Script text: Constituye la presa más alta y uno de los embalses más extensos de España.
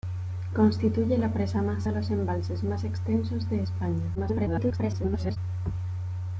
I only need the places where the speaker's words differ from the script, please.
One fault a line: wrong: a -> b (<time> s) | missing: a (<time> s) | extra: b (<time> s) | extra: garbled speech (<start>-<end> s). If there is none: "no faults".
missing: alta y uno (1.9 s)
extra: garbled speech (4.1-5.4 s)